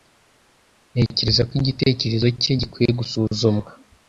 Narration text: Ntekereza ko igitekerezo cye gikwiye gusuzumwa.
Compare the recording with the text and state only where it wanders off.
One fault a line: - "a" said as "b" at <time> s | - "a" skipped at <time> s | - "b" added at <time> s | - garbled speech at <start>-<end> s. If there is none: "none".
none